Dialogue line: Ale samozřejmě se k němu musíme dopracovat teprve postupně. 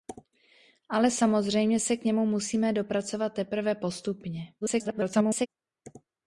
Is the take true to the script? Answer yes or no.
no